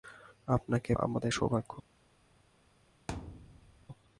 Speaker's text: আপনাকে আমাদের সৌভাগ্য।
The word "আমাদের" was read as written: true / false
true